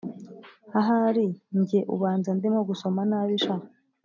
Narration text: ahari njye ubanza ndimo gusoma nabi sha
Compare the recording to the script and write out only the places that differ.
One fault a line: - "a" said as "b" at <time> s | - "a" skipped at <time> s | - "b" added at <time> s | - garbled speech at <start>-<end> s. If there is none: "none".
none